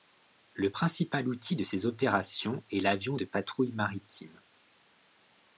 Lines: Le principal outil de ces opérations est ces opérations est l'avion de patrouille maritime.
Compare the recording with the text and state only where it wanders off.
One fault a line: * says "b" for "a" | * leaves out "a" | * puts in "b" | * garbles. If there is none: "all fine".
* leaves out "ces opérations est"